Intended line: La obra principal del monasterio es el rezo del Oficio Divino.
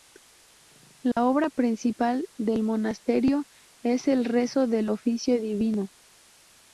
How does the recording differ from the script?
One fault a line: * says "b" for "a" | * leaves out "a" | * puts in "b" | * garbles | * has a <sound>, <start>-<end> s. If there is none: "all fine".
* has a dropout, 1.1-1.2 s